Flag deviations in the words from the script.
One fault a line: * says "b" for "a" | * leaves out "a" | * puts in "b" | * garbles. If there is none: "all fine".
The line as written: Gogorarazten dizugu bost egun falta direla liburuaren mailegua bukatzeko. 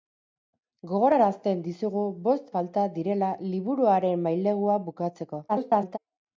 * leaves out "egun"
* garbles